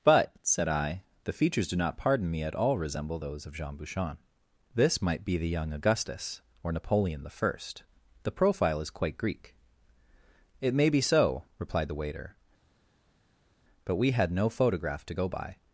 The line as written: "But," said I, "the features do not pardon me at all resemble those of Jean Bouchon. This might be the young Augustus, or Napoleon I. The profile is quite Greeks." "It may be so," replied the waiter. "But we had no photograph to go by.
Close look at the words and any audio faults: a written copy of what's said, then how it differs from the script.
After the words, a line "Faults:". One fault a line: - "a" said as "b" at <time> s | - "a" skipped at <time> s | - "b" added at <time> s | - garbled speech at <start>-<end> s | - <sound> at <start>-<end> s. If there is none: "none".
"But," said I, "the features do not pardon me at all resemble those of Jean Bouchon. This might be the young Augustus, or Napoleon I. The profile is quite Greek." "It may be so," replied the waiter. "But we had no photograph to go by.
Faults:
- "Greeks" said as "Greek" at 9.2 s